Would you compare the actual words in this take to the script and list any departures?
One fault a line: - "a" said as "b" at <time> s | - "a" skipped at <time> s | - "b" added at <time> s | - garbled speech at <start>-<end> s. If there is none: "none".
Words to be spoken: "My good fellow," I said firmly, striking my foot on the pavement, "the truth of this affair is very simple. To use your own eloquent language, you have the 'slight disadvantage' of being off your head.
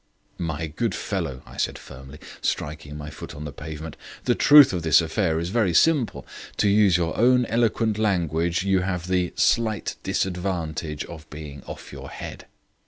none